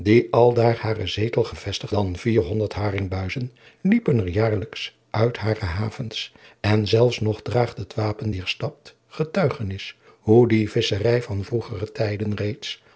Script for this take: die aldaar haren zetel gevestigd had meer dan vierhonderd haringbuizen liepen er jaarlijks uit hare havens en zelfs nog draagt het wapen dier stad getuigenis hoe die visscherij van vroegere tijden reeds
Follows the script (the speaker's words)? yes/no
no